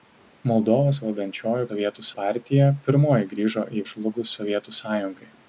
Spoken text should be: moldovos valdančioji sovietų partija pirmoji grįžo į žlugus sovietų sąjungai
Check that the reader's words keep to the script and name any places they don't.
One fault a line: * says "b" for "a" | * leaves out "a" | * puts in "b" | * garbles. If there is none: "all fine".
all fine